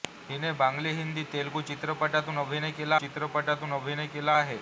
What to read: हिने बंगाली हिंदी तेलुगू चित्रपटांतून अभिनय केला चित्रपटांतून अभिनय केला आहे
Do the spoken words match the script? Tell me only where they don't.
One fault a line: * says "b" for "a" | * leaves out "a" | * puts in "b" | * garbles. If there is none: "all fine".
all fine